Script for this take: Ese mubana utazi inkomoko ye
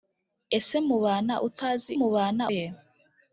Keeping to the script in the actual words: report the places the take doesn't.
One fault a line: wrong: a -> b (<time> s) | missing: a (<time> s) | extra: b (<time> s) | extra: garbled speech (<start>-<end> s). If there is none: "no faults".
wrong: inkomoko -> mubana (2.0 s)